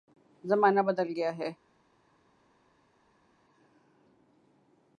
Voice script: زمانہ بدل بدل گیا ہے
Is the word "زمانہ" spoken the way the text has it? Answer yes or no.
yes